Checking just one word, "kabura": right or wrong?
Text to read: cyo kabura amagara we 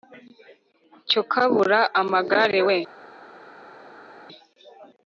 right